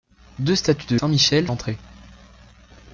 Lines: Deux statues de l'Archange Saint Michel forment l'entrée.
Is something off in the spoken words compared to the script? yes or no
yes